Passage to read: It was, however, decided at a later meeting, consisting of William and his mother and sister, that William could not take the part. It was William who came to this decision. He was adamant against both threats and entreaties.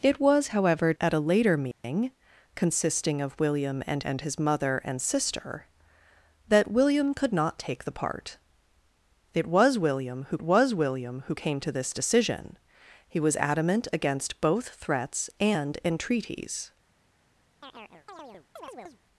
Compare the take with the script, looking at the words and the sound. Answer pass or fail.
fail